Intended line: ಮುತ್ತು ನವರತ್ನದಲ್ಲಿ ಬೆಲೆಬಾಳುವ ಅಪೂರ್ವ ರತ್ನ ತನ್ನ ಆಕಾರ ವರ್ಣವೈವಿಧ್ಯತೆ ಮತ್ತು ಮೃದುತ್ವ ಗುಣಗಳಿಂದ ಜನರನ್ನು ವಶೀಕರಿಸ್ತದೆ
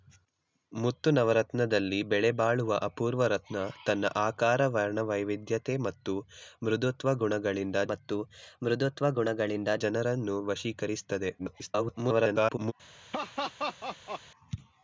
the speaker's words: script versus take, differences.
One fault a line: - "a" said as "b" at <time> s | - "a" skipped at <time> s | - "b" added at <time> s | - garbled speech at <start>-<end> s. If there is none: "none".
- "ಮತ್ತು ಮೃದುತ್ವ ಗುಣಗಳಿಂದ" added at 7.9 s
- garbled speech at 11.4-12.7 s